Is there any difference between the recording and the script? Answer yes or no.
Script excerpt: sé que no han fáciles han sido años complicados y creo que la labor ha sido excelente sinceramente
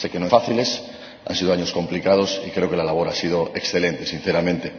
no